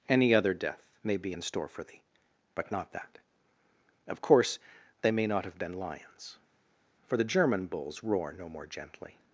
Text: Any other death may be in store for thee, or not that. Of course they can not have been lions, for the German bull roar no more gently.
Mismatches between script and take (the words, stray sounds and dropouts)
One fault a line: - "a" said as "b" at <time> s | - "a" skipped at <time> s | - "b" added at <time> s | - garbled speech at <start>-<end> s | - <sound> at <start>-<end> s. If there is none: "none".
- "or" said as "but" at 2.5 s
- "can" said as "may" at 5.1 s
- "bull" said as "bulls" at 7.7 s